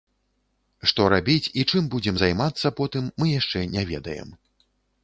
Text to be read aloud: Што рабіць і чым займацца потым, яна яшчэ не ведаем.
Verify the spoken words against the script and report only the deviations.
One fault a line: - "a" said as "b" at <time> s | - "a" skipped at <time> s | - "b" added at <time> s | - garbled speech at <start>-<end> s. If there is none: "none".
- "будзем" added at 2.0 s
- "яна" said as "мы" at 3.2 s